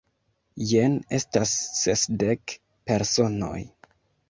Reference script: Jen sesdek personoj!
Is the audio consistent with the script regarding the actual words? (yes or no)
no